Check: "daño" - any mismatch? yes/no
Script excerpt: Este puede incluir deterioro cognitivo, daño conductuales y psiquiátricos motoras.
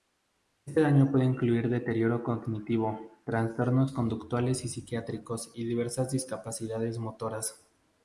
yes